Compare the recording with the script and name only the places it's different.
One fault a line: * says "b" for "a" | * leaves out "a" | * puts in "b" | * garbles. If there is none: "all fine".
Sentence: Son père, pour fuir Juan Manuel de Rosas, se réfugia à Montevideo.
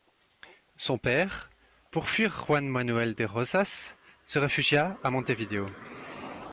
all fine